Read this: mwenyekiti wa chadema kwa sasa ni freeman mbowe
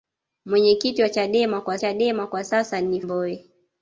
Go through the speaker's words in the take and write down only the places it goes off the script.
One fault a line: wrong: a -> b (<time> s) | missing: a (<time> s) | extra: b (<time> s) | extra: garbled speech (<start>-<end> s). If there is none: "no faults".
extra: chadema kwa (1.8 s)
missing: freeman (3.0 s)